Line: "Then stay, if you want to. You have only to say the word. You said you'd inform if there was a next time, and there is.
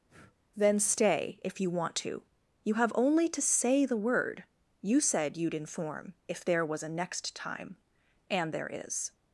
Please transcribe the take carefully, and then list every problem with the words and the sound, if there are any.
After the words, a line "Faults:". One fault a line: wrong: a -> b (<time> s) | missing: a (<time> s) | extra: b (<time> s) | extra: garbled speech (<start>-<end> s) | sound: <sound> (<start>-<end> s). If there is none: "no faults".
"Then stay, if you want to. You have only to say the word. You said you'd inform if there was a next time, and there is.
Faults:
sound: breath (0.1-0.4 s)